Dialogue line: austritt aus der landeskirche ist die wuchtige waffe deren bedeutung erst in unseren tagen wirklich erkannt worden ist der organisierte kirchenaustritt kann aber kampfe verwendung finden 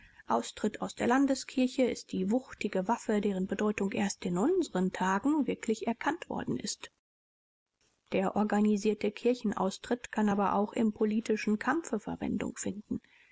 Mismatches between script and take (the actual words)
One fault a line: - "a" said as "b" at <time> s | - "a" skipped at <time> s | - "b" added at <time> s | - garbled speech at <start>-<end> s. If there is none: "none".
- "auch im politischen" added at 10.5 s